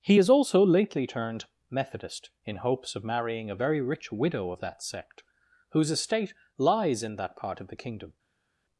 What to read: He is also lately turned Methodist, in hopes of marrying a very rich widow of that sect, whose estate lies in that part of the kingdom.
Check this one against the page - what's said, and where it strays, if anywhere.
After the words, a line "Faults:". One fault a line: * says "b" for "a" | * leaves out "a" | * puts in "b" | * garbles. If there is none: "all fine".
He is also lately turned Methodist, in hopes of marrying a very rich widow of that sect, whose estate lies in that part of the kingdom.
Faults:
all fine